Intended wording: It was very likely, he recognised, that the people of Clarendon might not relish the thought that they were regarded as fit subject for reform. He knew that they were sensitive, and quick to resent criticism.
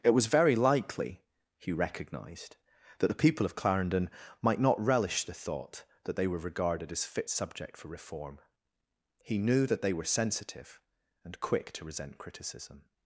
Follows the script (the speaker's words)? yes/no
yes